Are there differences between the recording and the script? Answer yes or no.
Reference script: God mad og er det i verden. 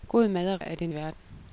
no